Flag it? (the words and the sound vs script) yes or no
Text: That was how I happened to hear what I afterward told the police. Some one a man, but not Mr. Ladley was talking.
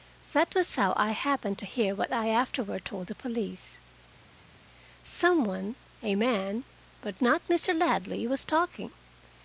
no